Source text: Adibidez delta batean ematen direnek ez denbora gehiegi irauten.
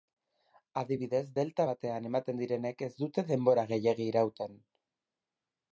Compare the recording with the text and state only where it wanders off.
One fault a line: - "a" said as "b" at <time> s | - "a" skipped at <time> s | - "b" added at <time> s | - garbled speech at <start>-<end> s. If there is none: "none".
- "dute" added at 3.0 s